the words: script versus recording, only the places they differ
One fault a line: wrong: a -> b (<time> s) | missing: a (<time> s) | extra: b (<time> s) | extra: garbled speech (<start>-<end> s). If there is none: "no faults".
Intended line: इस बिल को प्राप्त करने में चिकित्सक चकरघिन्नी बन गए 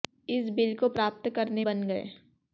missing: में चिकित्सक चकरघिन्नी (1.6 s)